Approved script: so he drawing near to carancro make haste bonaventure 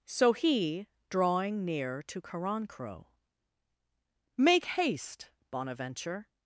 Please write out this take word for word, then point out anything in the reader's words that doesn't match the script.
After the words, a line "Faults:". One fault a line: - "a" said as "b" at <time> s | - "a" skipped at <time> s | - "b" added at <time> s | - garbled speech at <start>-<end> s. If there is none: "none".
so he drawing near to carancro make haste bonaventure
Faults:
none